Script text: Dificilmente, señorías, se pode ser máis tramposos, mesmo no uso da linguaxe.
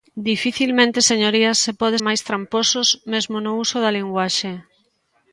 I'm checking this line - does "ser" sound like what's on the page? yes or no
no